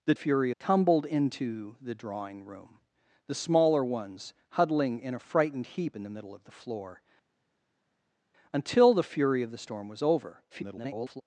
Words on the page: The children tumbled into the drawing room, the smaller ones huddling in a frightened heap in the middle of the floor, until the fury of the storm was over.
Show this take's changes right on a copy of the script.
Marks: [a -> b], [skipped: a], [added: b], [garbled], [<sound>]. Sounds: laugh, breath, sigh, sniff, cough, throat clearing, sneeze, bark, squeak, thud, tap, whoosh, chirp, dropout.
The [children -> fury] tumbled into the drawing room, the smaller ones huddling in a frightened heap in the middle of the floor, until the fury of the storm was over. [garbled]